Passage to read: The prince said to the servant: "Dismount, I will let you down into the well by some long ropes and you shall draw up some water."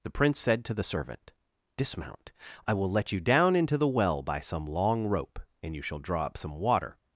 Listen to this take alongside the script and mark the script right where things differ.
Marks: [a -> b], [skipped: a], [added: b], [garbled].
The prince said to the servant: "Dismount, I will let you down into the well by some long [ropes -> rope] and you shall draw up some water."